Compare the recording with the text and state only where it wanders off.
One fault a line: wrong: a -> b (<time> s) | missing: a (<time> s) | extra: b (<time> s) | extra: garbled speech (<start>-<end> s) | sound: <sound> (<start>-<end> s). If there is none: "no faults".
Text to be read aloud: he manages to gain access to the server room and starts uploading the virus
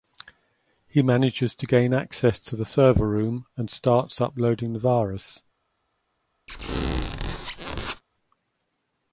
sound: squeak (6.5-8.0 s)